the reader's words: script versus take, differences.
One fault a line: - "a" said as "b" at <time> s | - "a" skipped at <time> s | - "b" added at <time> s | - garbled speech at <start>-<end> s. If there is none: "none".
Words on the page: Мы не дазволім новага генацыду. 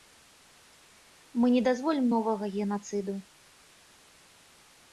none